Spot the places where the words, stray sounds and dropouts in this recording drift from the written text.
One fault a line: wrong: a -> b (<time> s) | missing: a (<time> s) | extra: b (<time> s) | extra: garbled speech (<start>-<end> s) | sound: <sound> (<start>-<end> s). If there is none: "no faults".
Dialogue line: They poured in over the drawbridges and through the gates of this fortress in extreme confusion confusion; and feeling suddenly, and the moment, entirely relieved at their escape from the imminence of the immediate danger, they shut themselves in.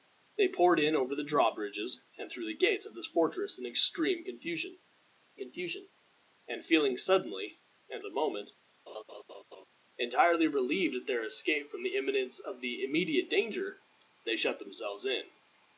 sound: laugh (8.9-9.7 s)